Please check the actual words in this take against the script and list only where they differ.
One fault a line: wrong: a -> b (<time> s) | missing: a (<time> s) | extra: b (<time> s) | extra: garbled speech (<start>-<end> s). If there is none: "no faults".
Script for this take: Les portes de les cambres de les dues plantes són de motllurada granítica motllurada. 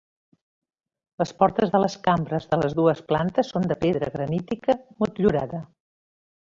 wrong: motllurada -> pedra (3.8 s)